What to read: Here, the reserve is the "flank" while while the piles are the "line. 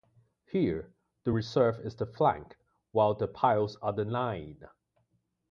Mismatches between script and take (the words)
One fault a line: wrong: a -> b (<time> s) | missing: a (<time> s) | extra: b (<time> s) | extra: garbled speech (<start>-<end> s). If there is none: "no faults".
missing: while (3.2 s)